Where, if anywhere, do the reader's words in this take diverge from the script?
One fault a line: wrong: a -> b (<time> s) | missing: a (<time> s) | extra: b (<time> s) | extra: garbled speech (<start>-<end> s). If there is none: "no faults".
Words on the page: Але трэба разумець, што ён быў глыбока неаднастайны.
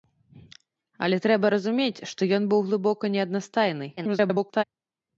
extra: garbled speech (4.0-4.6 s)